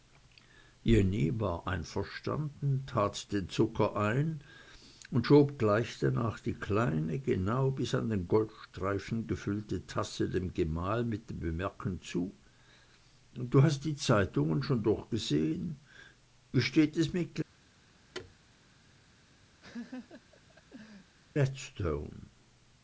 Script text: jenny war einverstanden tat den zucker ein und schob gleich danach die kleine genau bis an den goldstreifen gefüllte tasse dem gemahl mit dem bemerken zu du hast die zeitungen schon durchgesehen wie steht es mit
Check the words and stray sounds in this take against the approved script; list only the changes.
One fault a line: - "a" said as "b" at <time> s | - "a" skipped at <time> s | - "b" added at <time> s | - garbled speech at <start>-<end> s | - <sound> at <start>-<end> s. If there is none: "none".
- thud at 18.1-18.3 s
- laugh at 19.6-21.2 s